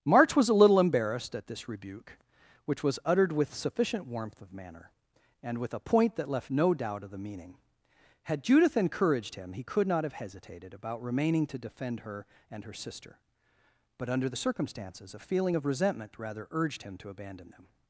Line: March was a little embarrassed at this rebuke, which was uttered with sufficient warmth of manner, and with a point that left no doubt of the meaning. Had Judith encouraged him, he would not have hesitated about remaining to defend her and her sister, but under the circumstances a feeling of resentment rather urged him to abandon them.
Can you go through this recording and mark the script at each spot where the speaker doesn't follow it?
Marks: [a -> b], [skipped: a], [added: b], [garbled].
March was a little embarrassed at this rebuke, which was uttered with sufficient warmth of manner, and with a point that left no doubt of the meaning. Had Judith encouraged him, he [would -> could] not have hesitated about remaining to defend her and her sister, but under the circumstances a feeling of resentment rather urged him to abandon them.